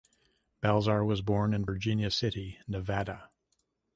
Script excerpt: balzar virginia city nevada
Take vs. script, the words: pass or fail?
fail